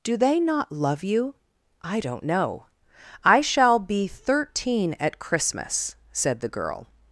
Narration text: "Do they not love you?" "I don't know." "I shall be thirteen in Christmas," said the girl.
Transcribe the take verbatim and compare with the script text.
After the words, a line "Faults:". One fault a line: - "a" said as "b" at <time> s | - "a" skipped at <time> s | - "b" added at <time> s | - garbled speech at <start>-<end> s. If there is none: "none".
"Do they not love you?" "I don't know." "I shall be thirteen at Christmas," said the girl.
Faults:
- "in" said as "at" at 5.0 s